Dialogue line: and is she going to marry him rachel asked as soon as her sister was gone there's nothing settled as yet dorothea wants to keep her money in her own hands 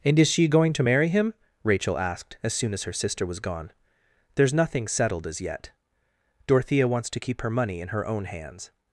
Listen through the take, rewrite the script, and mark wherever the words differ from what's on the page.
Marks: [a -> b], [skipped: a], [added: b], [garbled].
and is she going to marry him rachel asked as soon as her sister was gone there's nothing settled as yet dorothea wants to keep her money in her own hands